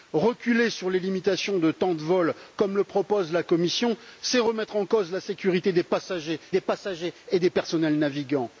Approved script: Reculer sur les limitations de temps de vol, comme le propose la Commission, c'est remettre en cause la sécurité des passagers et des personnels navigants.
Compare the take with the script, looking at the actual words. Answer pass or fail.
fail